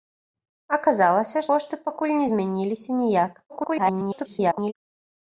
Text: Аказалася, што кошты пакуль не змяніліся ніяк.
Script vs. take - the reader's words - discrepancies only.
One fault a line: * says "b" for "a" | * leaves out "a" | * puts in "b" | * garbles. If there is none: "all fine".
* leaves out "што"
* garbles